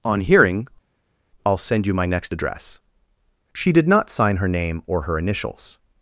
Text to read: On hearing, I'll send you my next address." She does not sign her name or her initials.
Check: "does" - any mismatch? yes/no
yes